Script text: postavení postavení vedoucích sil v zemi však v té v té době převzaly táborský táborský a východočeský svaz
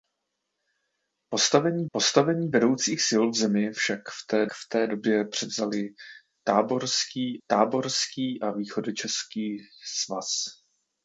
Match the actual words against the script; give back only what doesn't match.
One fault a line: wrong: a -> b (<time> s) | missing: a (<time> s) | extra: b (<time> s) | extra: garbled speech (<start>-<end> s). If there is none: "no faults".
no faults